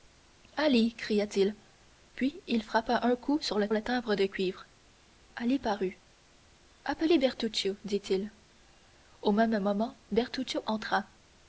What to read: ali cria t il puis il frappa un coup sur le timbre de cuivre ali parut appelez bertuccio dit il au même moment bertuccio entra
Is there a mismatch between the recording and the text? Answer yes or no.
yes